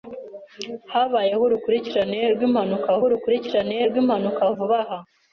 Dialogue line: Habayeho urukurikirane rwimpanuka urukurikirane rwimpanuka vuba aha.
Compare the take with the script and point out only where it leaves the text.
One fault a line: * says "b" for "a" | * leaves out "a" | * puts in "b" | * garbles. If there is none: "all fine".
all fine